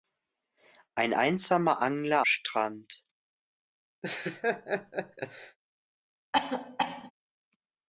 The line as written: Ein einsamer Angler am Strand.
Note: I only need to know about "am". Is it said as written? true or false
false